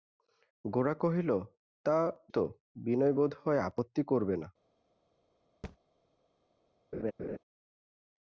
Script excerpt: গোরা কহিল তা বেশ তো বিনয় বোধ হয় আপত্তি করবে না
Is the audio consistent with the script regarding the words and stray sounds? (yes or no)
no